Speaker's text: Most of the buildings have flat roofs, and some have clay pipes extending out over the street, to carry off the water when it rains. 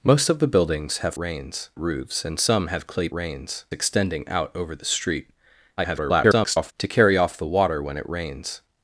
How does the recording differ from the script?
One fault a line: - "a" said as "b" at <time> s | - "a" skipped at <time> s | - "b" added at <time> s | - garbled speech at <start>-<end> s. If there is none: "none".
- "flat" said as "rains" at 1.2 s
- "pipes" said as "rains" at 3.1 s
- garbled speech at 5.8-6.7 s